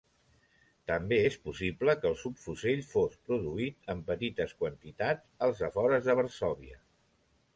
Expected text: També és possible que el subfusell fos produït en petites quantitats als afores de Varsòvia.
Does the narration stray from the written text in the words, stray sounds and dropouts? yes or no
no